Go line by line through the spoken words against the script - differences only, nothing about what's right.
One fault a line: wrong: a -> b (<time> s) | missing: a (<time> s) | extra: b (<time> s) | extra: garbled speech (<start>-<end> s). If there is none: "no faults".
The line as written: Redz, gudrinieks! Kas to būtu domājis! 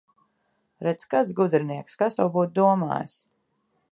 extra: kāds (1.1 s)